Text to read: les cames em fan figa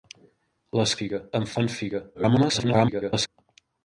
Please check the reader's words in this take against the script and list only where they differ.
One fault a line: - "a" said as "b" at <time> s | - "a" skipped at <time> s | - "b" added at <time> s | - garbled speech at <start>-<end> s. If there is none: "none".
- "cames" said as "figa" at 1.0 s
- garbled speech at 2.1-3.3 s